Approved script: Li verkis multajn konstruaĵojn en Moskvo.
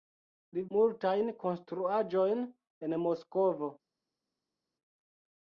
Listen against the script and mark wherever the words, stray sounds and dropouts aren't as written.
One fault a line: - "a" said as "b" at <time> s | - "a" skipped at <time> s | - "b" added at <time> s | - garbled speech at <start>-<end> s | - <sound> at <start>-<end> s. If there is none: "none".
- "verkis" skipped at 0.6 s